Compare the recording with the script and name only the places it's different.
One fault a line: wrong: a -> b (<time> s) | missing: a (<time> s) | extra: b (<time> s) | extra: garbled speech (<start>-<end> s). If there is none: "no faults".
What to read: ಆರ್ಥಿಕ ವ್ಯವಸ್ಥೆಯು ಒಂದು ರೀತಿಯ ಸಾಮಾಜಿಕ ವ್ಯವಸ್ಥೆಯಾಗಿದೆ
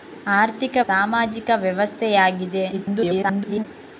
missing: ವ್ಯವಸ್ಥೆಯು ಒಂದು ರೀತಿಯ (0.8 s)
extra: garbled speech (2.7-3.6 s)